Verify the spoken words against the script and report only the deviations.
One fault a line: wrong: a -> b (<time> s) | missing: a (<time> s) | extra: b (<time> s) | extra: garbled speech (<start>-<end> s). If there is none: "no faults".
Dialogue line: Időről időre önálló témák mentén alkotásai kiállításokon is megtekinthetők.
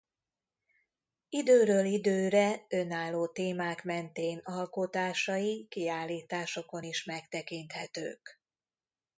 no faults